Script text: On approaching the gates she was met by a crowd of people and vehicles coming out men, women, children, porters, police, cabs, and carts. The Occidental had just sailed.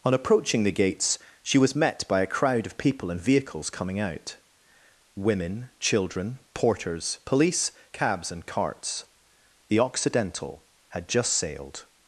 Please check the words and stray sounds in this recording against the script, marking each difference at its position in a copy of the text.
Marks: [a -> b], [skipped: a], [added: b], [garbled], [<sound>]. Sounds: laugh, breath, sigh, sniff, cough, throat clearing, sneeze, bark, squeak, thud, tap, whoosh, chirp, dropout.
On approaching the gates she was met by a crowd of people and vehicles coming out [skipped: men,] women, children, porters, police, cabs, and carts. The Occidental had just sailed.